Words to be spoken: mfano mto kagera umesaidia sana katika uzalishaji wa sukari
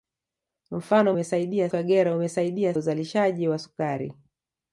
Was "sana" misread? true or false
true